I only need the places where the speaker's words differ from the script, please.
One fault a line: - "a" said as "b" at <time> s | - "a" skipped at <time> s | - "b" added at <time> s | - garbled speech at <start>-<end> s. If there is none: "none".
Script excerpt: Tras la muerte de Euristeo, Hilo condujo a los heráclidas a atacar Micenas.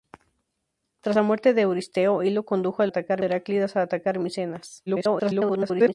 - "los" said as "atacar" at 2.9 s
- garbled speech at 4.9-5.9 s